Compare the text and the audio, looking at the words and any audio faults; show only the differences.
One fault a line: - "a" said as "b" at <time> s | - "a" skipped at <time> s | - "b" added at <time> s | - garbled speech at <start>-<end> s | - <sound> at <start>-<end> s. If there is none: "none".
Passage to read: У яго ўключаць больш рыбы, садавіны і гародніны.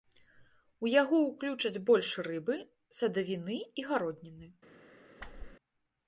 - whoosh at 5.2-5.6 s